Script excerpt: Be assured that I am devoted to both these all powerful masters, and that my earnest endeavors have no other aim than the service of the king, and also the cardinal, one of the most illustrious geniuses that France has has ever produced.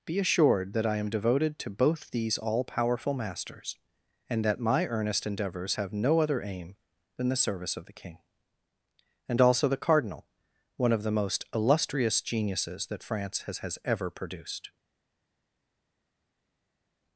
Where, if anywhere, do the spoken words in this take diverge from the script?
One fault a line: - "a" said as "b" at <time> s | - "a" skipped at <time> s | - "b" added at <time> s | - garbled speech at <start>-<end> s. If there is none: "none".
none